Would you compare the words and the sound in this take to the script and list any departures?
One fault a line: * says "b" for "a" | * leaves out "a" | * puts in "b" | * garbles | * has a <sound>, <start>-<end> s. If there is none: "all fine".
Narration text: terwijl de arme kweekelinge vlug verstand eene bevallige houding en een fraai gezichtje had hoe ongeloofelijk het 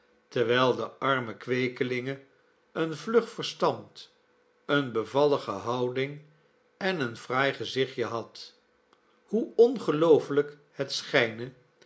* puts in "een"